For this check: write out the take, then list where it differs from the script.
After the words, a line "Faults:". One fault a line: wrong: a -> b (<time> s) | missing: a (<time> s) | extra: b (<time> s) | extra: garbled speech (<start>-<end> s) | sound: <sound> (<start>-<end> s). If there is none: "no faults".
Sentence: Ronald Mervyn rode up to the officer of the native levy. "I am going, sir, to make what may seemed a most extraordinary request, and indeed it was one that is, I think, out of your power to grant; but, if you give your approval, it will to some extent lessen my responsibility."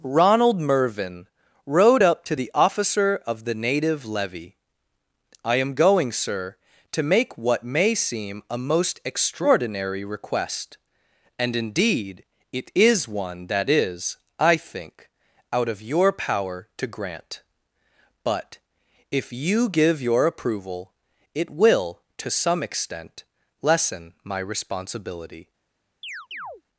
Ronald Mervyn rode up to the officer of the native levy. "I am going, sir, to make what may seem a most extraordinary request, and indeed it is one that is, I think, out of your power to grant; but, if you give your approval, it will to some extent lessen my responsibility."
Faults:
wrong: seemed -> seem (7.9 s)
wrong: was -> is (12.7 s)
sound: chirp (26.0-26.6 s)